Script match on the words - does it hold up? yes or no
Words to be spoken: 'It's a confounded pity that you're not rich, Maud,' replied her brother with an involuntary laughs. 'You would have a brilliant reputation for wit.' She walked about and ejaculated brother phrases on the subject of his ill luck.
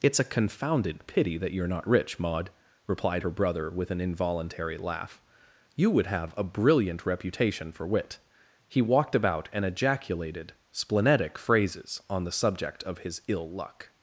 no